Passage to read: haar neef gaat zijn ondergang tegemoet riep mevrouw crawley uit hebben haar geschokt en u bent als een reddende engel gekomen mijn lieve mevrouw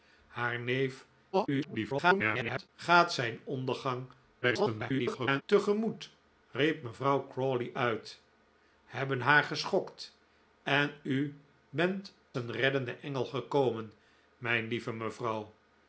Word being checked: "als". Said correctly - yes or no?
no